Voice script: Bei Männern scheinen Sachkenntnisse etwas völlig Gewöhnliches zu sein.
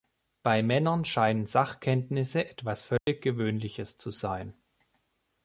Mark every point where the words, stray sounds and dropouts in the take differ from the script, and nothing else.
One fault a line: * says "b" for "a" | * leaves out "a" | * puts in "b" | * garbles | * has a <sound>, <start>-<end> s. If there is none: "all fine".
* has a dropout, 3.0-3.1 s